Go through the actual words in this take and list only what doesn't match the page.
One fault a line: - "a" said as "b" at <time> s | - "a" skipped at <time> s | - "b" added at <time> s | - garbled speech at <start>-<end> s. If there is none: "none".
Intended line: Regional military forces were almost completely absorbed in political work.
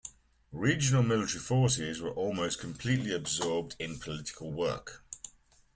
none